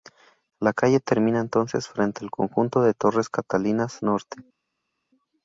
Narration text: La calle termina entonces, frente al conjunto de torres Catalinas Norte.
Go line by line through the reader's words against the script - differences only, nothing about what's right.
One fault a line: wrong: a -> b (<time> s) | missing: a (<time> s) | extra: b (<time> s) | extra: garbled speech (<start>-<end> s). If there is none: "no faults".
no faults